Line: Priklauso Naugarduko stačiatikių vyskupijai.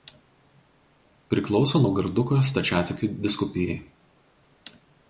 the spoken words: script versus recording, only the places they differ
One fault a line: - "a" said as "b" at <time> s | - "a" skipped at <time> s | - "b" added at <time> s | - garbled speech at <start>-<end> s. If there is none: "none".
none